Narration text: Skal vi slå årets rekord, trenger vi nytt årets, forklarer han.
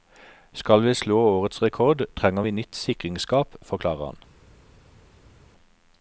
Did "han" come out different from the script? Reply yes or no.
no